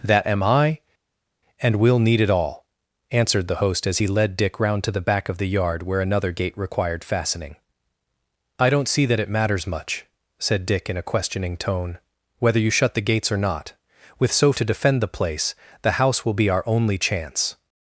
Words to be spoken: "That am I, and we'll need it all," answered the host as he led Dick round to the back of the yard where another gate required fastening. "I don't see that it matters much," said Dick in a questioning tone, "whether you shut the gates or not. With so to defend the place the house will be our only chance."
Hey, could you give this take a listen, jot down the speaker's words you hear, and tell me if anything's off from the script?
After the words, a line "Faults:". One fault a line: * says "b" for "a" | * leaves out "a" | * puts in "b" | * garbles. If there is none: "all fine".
"That am I, and we'll need it all," answered the host as he led Dick round to the back of the yard where another gate required fastening. "I don't see that it matters much," said Dick in a questioning tone, "whether you shut the gates or not. With so to defend the place the house will be our only chance."
Faults:
all fine